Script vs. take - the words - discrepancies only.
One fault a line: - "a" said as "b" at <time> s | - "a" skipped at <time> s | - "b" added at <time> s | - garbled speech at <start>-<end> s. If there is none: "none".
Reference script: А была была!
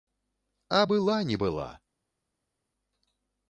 - "не" added at 1.2 s